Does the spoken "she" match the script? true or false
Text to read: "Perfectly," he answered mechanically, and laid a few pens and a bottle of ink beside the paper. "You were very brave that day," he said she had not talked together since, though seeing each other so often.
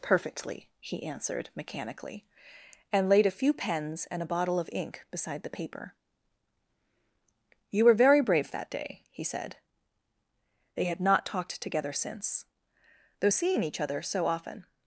false